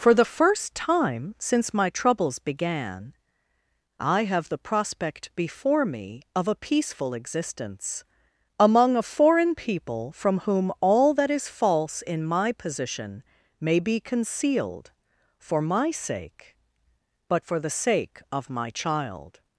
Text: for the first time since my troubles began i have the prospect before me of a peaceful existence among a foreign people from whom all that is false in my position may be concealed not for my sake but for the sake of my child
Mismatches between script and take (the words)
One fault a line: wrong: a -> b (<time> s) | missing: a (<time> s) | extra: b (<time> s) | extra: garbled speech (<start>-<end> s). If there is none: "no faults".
missing: not (14.9 s)